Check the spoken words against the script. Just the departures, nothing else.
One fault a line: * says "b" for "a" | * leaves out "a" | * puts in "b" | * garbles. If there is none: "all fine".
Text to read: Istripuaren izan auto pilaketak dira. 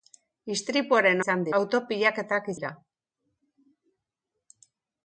all fine